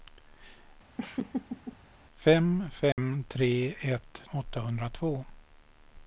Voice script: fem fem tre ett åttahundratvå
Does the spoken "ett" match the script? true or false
true